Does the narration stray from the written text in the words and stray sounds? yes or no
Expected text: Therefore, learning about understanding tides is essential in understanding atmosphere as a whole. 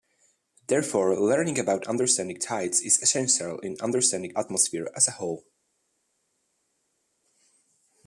no